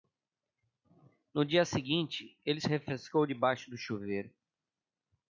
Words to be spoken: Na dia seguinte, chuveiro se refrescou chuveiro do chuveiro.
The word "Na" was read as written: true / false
false